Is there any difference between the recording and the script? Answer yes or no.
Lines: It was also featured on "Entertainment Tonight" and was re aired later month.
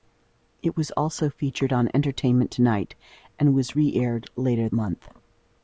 no